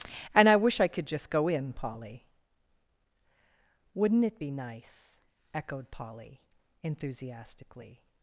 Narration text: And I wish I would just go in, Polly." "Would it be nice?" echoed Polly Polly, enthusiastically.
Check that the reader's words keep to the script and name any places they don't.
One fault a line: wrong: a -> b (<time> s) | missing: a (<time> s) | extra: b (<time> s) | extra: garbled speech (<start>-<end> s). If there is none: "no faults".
wrong: would -> could (0.9 s)
wrong: Would -> Wouldn't (3.9 s)
missing: Polly (6.4 s)